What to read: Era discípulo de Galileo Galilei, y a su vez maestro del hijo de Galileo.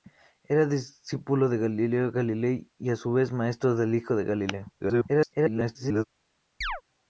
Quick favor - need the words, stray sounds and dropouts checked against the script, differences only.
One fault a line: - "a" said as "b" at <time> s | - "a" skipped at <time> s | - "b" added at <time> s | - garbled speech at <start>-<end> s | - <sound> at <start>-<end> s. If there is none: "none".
- garbled speech at 4.8-6.0 s
- chirp at 6.6-6.8 s